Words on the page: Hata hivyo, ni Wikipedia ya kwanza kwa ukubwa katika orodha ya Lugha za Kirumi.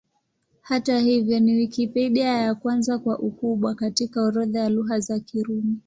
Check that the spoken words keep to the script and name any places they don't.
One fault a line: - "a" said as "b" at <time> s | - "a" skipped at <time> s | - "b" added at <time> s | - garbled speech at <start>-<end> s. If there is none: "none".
none